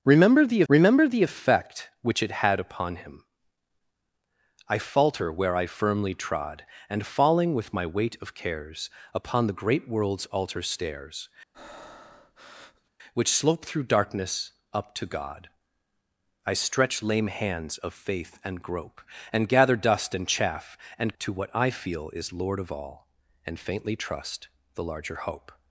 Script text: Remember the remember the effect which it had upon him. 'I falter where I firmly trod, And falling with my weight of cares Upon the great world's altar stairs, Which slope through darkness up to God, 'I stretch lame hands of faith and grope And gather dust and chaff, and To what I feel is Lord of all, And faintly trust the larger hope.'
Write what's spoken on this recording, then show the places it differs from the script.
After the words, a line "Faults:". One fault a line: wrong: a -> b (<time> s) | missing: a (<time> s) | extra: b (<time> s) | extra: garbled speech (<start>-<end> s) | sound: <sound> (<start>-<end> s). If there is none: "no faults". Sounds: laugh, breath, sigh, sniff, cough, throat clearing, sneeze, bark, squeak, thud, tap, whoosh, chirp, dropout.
Remember the remember the effect which it had upon him. 'I falter where I firmly trod, And falling with my weight of cares Upon the great world's altar stairs, Which slope through darkness up to God, 'I stretch lame hands of faith and grope And gather dust and chaff, and To what I feel is Lord of all, And faintly trust the larger hope.'
Faults:
sound: breath (11.5-12.9 s)